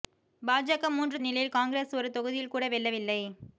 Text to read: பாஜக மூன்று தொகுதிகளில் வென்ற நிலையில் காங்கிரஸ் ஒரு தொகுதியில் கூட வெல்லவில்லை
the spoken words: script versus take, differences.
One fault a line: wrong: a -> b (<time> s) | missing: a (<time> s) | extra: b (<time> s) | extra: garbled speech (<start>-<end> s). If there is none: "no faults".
missing: தொகுதிகளில் வென்ற (1.2 s)